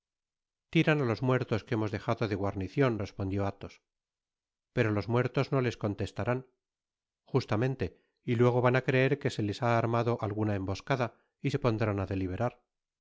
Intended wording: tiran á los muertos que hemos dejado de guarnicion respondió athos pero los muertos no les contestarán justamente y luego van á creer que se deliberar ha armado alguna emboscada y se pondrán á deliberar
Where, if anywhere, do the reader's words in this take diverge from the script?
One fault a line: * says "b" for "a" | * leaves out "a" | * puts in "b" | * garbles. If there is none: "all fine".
* says "les" for "deliberar"